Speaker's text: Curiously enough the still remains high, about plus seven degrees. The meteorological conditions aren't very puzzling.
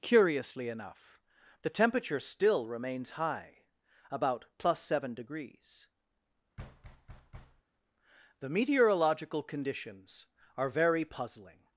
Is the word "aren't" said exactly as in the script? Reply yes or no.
no